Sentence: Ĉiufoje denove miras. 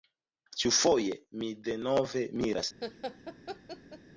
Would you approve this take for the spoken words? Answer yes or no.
no